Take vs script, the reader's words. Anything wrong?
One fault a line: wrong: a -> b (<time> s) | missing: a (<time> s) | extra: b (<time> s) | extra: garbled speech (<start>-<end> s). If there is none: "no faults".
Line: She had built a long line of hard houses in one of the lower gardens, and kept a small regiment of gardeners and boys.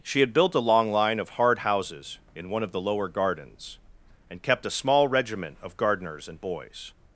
no faults